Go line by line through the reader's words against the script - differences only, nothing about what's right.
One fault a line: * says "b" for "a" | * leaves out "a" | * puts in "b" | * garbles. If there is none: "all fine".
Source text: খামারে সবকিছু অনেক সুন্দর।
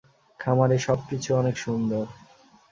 all fine